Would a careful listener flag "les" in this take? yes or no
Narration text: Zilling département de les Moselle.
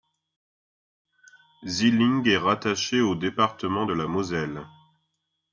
yes